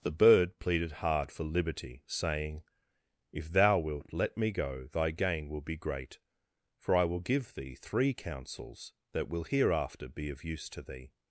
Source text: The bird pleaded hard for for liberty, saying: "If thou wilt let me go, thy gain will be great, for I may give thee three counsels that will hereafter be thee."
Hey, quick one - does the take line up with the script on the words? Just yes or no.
no